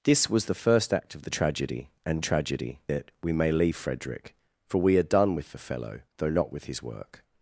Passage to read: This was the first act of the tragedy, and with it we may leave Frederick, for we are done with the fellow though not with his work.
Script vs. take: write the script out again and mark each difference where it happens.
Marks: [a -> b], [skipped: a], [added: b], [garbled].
This was the first act of the tragedy, and [with -> tragedy] it we may leave Frederick, for we are done with the fellow though not with his work.